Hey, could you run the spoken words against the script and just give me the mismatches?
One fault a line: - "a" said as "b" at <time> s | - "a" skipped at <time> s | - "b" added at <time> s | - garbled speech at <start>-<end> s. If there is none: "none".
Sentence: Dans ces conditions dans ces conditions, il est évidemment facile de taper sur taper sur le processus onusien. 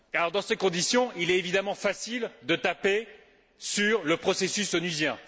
- "dans ces conditions" skipped at 1.1 s
- "taper sur" skipped at 4.0 s